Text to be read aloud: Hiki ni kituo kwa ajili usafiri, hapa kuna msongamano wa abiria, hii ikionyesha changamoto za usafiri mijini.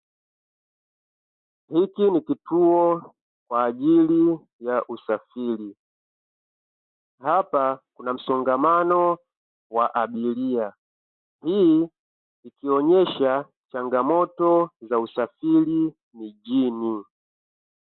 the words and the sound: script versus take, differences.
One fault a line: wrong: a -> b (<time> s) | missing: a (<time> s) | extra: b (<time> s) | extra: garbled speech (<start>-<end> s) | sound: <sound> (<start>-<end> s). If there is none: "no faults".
extra: ya (4.6 s)